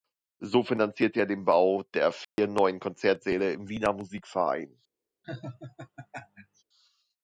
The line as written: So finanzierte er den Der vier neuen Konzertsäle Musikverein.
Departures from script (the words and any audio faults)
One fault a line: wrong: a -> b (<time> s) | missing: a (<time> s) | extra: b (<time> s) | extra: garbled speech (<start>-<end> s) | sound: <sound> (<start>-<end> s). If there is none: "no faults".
extra: Bau (1.4 s)
sound: dropout (2.2-2.4 s)
extra: im Wiener (3.5 s)
sound: laugh (5.2-6.6 s)